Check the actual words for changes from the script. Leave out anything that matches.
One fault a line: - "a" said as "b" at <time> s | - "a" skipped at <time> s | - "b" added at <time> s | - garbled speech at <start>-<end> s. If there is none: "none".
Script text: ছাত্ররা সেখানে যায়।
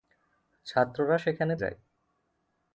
none